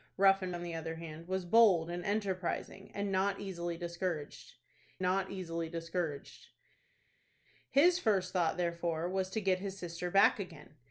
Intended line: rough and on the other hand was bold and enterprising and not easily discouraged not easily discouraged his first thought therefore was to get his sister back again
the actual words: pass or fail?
pass